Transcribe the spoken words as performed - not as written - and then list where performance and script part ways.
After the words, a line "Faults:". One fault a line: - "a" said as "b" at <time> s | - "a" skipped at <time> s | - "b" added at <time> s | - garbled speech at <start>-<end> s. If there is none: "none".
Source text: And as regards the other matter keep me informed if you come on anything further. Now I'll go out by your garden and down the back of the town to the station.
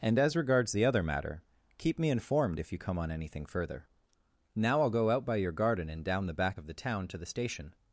And as regards the other matter keep me informed if you come on anything further. Now I'll go out by your garden and down the back of the town to the station.
Faults:
none